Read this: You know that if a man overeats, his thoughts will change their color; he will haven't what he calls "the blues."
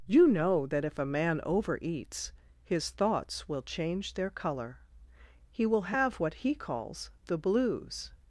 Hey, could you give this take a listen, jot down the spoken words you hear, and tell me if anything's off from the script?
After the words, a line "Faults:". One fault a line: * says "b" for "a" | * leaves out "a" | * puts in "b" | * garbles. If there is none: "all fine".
You know that if a man overeats, his thoughts will change their color; he will have what he calls "the blues."
Faults:
* says "have" for "haven't"